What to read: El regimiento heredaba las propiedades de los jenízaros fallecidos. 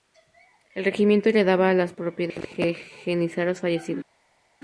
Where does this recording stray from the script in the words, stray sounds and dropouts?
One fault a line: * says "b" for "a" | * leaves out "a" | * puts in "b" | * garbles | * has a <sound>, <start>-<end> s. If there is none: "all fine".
all fine